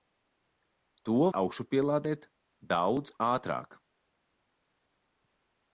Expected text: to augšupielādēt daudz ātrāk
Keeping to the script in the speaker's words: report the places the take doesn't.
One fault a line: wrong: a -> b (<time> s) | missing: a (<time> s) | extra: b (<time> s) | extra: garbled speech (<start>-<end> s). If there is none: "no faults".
no faults